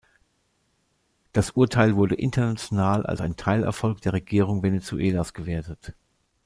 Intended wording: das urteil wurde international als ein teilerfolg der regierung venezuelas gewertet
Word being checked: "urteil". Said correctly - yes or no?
yes